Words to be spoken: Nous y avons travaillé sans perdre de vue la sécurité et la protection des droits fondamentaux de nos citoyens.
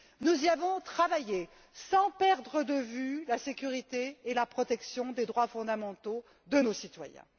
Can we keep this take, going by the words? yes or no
yes